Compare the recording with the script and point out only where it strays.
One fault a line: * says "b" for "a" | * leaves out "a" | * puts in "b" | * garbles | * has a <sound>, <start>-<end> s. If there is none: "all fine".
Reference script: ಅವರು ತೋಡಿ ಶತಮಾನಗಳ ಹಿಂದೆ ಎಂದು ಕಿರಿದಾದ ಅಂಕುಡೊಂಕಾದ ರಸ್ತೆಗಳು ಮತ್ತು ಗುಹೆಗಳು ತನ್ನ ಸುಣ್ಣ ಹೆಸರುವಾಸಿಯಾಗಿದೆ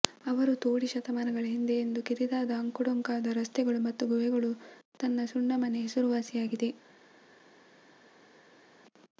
* puts in "ಮನೆ"